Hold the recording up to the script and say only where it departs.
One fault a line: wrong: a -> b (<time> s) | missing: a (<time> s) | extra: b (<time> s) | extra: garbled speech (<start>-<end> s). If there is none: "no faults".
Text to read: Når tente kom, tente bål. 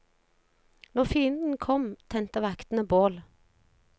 wrong: tente -> fienden (1.1 s)
extra: vaktene (2.4 s)